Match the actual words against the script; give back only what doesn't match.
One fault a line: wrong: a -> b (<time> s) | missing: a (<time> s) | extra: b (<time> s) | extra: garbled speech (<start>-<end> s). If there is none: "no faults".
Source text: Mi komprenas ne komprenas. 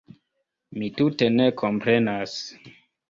wrong: komprenas -> tute (1.0 s)